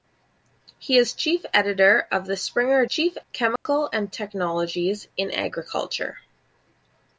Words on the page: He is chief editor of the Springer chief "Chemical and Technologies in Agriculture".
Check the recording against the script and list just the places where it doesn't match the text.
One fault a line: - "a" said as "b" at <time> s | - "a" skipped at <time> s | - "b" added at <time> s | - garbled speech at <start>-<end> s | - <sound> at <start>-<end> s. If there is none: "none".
- dropout at 3.6-3.7 s